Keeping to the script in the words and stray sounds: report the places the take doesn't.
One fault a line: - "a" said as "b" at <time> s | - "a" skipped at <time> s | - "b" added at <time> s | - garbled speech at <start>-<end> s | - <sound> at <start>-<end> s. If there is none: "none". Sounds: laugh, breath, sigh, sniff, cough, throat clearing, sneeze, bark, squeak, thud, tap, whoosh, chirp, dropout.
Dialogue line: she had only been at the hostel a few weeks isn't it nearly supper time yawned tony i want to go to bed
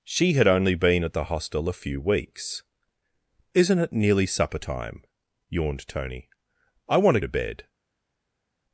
- "go" skipped at 7.2 s